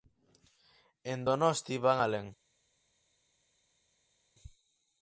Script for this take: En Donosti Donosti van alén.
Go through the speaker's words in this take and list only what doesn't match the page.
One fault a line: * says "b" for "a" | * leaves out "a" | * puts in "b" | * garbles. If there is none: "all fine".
* leaves out "Donosti"